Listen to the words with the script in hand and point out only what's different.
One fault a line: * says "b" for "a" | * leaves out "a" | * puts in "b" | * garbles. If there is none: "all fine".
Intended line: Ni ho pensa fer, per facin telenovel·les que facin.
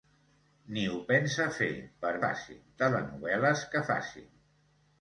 all fine